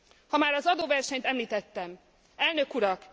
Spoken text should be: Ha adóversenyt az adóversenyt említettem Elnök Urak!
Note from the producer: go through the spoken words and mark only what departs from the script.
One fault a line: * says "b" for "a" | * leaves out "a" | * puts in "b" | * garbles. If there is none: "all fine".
* says "már" for "adóversenyt"